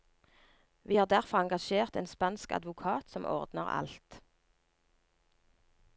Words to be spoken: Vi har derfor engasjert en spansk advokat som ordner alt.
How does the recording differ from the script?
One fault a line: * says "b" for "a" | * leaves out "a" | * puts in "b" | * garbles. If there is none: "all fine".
all fine